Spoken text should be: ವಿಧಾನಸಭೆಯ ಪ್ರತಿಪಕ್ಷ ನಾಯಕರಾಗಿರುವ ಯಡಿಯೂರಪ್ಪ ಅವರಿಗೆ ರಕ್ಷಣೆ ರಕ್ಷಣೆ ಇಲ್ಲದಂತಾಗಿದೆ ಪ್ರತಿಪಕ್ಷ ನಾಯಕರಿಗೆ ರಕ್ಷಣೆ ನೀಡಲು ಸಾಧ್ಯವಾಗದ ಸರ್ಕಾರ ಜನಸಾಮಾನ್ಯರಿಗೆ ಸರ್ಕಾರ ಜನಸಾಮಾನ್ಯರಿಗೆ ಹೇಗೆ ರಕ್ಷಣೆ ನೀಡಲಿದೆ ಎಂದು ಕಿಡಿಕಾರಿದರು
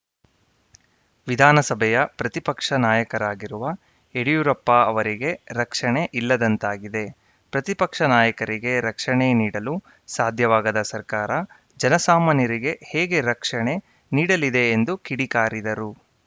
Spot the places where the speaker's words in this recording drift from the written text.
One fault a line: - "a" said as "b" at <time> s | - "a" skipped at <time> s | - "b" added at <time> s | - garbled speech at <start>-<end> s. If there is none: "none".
- "ರಕ್ಷಣೆ" skipped at 6.0 s
- "ಸರ್ಕಾರ ಜನಸಾಮಾನ್ಯರಿಗೆ" skipped at 12.8 s